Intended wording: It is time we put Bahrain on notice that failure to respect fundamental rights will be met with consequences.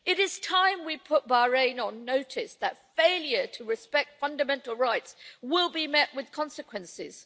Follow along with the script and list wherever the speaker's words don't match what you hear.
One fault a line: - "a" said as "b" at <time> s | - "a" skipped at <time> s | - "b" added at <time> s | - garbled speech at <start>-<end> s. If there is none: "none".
none